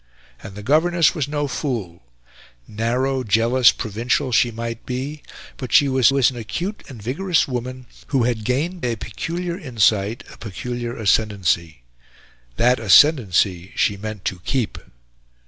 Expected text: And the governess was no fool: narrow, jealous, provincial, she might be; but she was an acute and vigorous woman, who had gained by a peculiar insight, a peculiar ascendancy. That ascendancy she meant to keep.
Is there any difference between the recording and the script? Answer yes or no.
yes